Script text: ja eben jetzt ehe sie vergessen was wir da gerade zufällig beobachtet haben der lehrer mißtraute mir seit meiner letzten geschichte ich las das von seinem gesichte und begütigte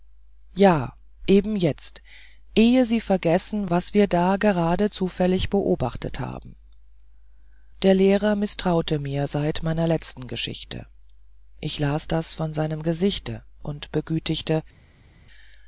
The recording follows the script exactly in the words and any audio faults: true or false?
true